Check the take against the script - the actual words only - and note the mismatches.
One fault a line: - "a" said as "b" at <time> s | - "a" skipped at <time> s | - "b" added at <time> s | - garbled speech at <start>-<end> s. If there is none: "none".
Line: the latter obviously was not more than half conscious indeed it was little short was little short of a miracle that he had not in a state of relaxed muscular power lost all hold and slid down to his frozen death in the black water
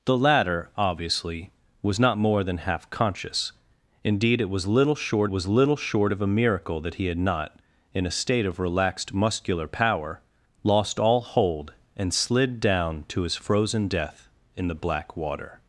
none